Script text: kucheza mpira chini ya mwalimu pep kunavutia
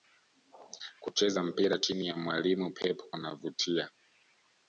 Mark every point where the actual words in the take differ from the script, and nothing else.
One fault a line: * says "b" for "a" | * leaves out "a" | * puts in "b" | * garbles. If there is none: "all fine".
all fine